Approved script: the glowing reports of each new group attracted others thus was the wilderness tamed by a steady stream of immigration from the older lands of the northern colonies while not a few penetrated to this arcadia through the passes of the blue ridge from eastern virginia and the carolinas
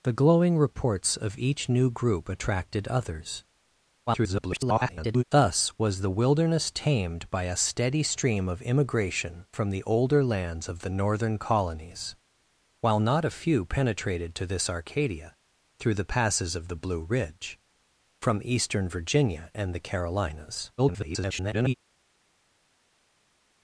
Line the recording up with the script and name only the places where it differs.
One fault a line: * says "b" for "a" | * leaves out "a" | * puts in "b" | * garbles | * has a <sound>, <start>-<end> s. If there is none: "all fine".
* garbles
* garbles